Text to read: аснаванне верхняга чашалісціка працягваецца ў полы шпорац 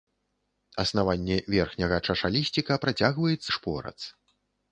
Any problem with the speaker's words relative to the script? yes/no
yes